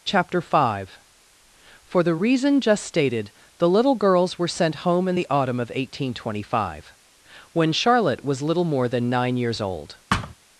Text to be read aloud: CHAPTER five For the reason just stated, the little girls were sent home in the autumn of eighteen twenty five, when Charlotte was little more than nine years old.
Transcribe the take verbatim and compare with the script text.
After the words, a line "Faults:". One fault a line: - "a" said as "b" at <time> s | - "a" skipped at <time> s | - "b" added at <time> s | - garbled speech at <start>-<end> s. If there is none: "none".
CHAPTER five For the reason just stated, the little girls were sent home in the autumn of eighteen twenty five, when Charlotte was little more than nine years old.
Faults:
none